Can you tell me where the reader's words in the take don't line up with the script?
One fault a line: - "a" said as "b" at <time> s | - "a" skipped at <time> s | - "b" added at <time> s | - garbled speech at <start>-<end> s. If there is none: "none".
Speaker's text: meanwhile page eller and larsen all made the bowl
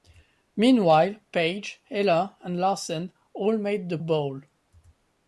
none